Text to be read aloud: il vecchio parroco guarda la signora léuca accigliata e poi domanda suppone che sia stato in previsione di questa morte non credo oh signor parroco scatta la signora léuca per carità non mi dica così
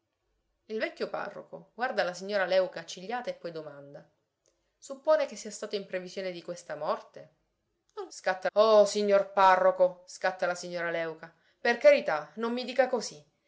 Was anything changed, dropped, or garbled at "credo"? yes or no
yes